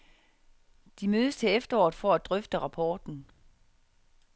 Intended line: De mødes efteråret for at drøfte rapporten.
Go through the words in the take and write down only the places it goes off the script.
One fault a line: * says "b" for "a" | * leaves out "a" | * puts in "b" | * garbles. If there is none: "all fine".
* puts in "til"